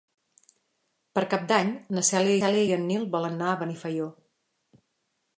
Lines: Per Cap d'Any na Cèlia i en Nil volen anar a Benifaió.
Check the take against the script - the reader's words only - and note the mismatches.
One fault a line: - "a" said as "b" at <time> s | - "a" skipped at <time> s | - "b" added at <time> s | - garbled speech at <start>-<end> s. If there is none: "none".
- "Cèlia" added at 2.4 s